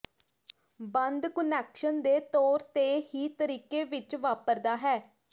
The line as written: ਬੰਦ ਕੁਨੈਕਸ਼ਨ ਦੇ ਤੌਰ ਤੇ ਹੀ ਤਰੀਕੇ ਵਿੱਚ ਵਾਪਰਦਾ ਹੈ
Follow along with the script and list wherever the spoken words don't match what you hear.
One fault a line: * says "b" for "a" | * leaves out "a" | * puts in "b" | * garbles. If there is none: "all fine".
all fine